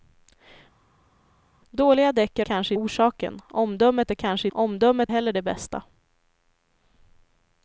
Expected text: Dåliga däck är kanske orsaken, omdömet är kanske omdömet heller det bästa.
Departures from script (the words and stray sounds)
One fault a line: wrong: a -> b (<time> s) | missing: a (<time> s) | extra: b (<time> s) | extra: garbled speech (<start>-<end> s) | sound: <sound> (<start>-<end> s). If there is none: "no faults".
no faults